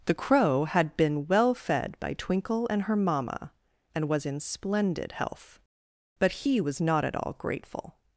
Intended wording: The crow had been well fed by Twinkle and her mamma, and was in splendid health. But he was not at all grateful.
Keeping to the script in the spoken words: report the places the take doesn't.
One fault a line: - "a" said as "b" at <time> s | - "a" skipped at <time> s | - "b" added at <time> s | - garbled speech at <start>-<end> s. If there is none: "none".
none